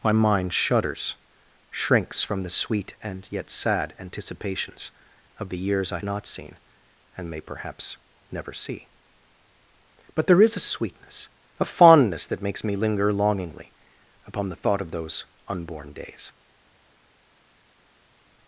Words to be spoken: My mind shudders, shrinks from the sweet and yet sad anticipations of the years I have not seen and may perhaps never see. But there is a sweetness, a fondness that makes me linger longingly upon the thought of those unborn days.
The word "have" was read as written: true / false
false